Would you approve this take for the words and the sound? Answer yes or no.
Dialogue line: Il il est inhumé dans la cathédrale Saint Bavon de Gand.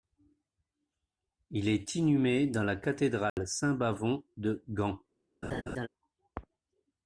no